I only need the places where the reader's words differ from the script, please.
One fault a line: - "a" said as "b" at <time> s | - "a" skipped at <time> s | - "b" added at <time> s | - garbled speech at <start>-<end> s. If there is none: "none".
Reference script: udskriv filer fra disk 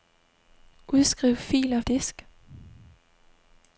- "fra" skipped at 1.8 s